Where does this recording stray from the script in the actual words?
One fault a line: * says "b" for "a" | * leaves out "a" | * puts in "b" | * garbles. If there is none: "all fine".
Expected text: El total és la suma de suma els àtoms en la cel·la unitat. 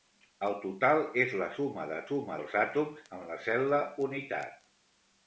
all fine